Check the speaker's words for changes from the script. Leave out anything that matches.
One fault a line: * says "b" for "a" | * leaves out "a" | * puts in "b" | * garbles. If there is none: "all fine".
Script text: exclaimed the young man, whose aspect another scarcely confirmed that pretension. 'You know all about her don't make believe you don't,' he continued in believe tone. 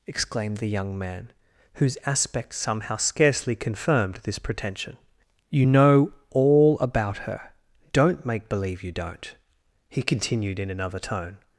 * says "somehow" for "another"
* says "this" for "that"
* says "another" for "believe"